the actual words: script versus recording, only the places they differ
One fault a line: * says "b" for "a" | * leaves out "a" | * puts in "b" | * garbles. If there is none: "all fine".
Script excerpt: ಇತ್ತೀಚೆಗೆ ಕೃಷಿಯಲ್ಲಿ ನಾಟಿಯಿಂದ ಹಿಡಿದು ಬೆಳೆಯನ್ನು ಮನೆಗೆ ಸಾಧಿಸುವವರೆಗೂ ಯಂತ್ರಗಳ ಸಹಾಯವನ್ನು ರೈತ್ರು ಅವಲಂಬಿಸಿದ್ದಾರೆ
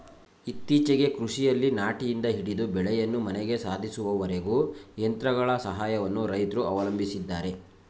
all fine